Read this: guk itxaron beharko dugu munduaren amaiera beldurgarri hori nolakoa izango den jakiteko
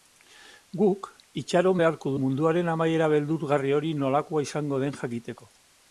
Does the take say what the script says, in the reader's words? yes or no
no